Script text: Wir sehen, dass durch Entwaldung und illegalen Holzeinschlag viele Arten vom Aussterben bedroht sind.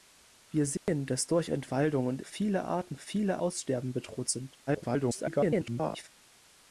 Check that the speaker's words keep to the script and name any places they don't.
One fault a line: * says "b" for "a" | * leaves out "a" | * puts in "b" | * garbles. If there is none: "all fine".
* leaves out "illegalen Holzeinschlag"
* says "viele" for "vom"
* garbles